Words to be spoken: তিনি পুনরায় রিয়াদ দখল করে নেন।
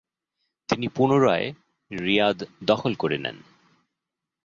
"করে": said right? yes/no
yes